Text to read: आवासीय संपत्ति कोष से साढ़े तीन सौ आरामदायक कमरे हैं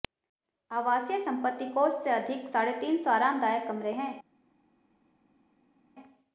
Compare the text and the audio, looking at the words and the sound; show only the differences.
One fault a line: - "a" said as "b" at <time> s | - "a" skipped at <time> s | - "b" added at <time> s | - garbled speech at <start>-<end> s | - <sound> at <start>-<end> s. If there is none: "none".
- "अधिक" added at 2.1 s